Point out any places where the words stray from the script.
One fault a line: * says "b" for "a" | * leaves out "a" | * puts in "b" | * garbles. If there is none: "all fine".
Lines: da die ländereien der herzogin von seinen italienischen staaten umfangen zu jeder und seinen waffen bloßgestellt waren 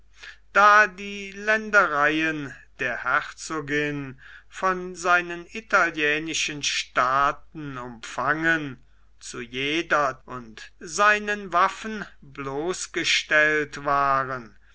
all fine